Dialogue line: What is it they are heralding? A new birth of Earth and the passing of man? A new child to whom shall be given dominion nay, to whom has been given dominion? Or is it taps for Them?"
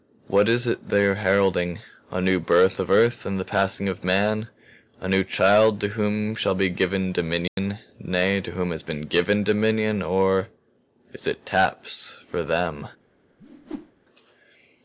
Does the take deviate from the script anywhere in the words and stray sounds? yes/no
yes